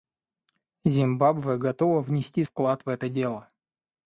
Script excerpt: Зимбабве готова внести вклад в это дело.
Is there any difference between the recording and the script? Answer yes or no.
no